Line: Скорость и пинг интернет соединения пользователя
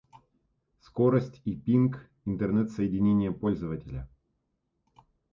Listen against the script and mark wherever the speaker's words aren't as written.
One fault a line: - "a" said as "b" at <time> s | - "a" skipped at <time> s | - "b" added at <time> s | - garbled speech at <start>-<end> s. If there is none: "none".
none